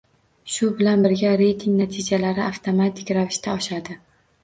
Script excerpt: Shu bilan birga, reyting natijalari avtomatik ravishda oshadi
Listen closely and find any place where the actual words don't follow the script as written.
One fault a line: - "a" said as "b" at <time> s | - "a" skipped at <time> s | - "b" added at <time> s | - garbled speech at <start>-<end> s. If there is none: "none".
none